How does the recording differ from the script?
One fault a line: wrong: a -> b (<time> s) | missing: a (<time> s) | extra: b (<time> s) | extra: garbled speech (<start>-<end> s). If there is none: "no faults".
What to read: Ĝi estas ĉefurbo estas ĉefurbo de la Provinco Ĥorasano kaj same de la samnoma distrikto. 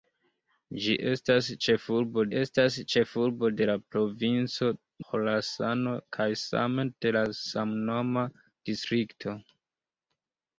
no faults